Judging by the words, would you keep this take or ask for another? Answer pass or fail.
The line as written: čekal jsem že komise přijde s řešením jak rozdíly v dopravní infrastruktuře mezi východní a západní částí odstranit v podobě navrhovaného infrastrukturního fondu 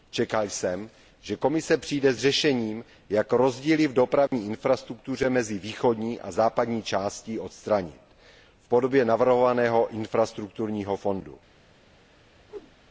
pass